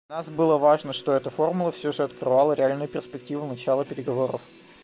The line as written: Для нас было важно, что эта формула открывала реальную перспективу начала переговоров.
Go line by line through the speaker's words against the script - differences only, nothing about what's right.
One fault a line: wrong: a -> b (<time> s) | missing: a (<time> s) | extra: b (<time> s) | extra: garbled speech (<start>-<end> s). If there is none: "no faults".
extra: все же (1.7 s)